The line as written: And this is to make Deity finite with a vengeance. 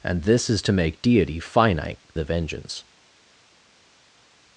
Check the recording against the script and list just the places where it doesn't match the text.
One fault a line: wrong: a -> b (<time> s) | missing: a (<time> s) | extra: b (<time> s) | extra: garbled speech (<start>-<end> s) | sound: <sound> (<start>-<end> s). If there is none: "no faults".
missing: with (2.0 s)